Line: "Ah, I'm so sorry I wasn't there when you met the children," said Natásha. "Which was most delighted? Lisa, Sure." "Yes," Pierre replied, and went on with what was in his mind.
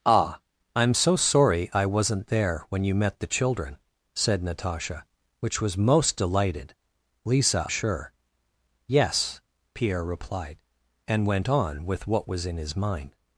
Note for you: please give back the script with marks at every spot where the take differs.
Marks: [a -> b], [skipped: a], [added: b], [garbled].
"Ah, I'm so sorry I wasn't there when you met the children," said Natásha. "Which was most delighted? Lisa, Sure." "Yes," Pierre replied, and went on with what was in his mind.